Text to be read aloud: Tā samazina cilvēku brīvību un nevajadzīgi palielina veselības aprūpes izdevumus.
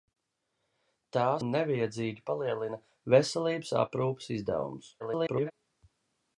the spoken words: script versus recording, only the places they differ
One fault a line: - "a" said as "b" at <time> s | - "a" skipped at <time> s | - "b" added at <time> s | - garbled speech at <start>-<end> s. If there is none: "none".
- "samazina cilvēku brīvību" skipped at 1.2 s
- garbled speech at 5.0-5.5 s